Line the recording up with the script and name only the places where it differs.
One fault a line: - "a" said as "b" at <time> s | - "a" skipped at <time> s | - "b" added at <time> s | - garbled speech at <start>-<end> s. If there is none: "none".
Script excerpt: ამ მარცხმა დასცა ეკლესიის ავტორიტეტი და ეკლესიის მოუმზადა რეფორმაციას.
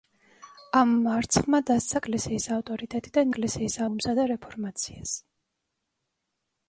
none